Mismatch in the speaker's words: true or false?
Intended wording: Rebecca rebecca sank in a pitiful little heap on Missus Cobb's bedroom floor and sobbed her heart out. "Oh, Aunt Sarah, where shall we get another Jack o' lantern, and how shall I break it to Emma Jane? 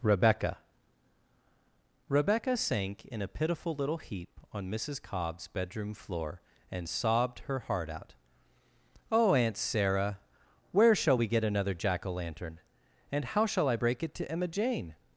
false